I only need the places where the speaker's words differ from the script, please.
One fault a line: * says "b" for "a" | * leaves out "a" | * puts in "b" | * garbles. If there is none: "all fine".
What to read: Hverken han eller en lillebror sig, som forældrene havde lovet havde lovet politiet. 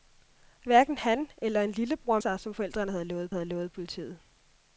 all fine